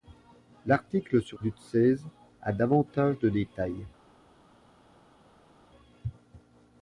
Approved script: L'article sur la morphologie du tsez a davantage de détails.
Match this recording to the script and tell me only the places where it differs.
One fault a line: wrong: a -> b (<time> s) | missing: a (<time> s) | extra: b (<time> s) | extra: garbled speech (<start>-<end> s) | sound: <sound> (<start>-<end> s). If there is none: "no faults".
missing: la morphologie (1.4 s)